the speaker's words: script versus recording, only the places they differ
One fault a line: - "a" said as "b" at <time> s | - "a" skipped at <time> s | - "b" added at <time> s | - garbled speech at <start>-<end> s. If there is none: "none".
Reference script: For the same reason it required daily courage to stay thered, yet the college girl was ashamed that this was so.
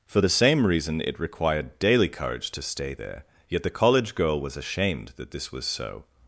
- "thered" said as "there" at 2.9 s